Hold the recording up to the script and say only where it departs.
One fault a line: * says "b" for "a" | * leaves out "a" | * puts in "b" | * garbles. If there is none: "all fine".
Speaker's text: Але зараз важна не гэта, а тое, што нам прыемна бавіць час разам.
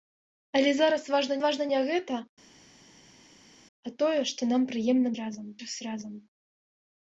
* puts in "важна"
* says "разам" for "бавіць"